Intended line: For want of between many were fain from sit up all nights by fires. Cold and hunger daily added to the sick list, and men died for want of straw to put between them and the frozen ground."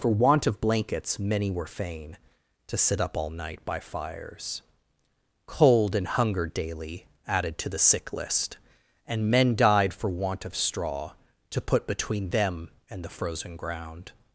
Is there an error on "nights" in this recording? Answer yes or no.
yes